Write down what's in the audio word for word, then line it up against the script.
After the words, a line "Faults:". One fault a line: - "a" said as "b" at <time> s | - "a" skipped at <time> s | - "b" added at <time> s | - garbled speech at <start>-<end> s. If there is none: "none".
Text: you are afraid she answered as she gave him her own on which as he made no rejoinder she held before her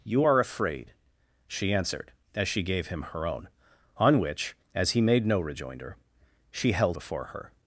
you are afraid she answered as she gave him her own on which as he made no rejoinder she held before her
Faults:
none